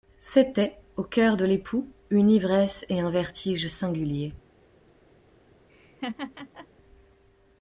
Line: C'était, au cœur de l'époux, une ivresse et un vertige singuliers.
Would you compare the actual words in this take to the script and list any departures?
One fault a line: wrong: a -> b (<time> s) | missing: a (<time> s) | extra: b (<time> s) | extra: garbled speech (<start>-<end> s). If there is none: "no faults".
no faults